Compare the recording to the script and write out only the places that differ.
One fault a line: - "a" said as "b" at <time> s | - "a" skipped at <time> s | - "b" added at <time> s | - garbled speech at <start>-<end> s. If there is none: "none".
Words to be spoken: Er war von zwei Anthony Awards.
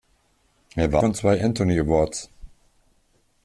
none